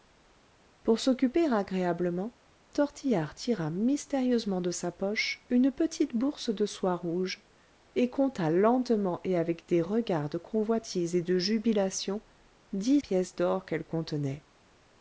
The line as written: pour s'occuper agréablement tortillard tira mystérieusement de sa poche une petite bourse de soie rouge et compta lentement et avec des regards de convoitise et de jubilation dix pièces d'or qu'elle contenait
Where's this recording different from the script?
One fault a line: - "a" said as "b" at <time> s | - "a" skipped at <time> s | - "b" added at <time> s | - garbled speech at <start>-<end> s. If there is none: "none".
none